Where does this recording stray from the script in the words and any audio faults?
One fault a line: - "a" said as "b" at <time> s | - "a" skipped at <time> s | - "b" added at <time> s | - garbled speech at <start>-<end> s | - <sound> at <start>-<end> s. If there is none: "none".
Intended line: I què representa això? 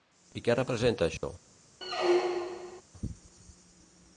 - dropout at 1.2-1.2 s
- squeak at 1.8-2.8 s